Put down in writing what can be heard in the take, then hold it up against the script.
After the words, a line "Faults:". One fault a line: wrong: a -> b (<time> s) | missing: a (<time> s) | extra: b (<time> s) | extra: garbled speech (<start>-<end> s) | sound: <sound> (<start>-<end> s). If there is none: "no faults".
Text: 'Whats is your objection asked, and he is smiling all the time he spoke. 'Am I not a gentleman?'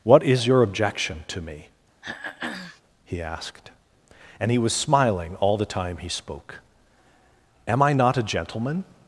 'What is your objection to me?' he asked, and he was smiling all the time he spoke. 'Am I not a gentleman?'
Faults:
wrong: Whats -> What (0.0 s)
extra: to me he (1.3 s)
sound: throat clearing (2.0-2.8 s)
wrong: is -> was (4.6 s)